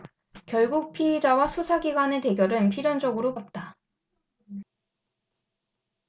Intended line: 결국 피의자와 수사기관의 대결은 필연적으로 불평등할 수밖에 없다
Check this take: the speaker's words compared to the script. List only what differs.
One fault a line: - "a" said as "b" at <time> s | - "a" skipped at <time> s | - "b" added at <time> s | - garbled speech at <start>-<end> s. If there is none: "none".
- "불평등할 수밖에" skipped at 3.4 s